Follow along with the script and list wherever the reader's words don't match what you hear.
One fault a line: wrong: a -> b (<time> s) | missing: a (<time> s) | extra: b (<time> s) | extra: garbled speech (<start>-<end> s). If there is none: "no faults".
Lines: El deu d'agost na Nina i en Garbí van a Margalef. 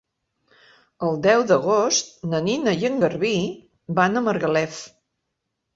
no faults